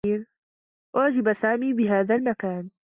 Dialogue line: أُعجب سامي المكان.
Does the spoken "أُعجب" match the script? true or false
true